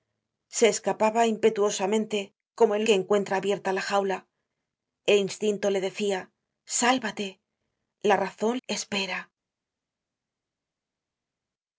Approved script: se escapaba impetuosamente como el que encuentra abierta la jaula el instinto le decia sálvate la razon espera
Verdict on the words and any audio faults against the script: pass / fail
pass